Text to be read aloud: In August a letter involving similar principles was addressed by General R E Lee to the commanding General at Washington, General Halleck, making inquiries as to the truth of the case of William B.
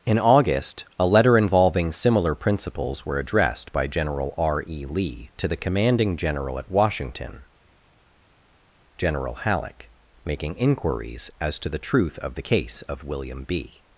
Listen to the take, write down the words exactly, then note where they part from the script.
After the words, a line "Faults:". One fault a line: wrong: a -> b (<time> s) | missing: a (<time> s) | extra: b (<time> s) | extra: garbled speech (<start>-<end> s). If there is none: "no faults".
In August a letter involving similar principles were addressed by General R E Lee to the commanding General at Washington, General Halleck, making inquiries as to the truth of the case of William B.
Faults:
wrong: was -> were (3.0 s)